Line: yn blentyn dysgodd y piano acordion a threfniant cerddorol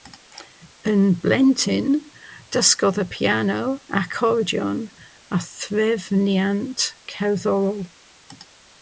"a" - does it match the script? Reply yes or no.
yes